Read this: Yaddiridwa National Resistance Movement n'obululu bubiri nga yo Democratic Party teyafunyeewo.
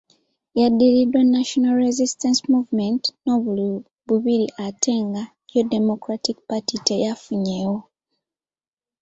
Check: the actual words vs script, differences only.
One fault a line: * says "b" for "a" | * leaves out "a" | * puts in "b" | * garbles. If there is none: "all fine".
* puts in "ate"